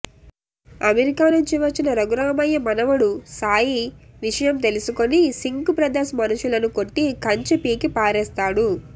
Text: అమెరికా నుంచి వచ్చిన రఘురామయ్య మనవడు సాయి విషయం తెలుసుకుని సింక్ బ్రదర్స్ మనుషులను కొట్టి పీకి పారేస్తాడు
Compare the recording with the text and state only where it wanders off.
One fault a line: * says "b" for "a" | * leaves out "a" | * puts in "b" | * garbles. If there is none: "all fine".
* puts in "కంచె"